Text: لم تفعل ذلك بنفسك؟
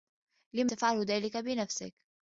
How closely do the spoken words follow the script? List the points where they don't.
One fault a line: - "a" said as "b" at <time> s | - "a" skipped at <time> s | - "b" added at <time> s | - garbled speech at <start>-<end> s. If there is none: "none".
none